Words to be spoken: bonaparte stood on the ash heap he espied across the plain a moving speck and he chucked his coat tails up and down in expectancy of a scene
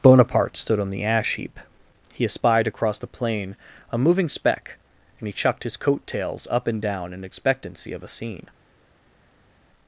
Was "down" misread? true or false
false